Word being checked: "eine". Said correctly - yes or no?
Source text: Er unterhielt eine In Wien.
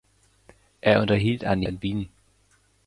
yes